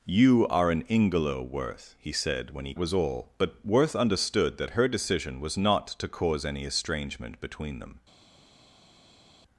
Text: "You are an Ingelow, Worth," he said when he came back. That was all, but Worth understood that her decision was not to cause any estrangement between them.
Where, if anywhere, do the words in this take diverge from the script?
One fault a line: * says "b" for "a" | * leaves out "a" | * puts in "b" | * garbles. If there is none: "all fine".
* leaves out "came back That"